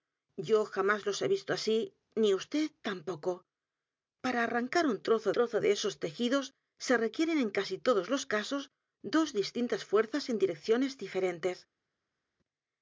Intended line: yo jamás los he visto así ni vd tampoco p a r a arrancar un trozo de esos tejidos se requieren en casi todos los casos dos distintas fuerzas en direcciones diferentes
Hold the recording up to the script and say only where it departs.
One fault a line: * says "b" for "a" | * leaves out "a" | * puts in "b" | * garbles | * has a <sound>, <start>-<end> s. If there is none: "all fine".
* puts in "trozo"